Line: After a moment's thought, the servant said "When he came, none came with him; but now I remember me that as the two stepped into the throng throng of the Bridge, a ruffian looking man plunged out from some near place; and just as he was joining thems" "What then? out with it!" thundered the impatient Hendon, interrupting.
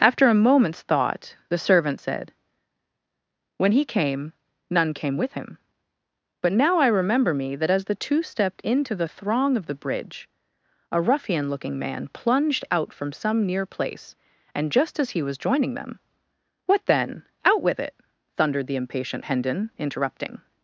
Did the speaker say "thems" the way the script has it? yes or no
no